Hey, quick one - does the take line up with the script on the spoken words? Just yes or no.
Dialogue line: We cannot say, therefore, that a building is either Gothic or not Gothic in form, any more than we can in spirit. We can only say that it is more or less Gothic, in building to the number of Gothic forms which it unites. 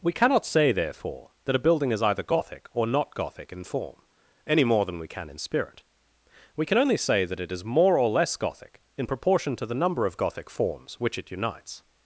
no